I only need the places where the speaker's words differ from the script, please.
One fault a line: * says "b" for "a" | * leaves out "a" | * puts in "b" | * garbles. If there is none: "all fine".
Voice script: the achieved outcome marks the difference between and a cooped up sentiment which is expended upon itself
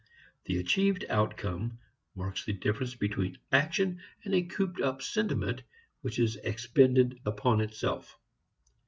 * puts in "action"